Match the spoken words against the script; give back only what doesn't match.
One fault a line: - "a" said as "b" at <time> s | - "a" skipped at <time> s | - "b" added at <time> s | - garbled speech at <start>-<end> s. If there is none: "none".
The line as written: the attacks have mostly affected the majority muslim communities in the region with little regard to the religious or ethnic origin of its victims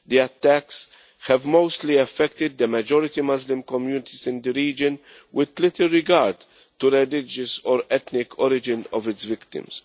none